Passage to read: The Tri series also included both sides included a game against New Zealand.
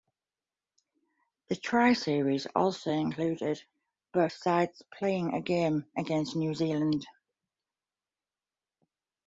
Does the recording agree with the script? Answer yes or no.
no